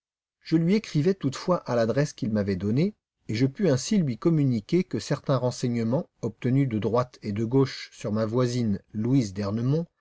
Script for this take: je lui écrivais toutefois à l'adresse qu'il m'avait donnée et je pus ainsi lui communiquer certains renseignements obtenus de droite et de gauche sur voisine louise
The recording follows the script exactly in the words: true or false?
false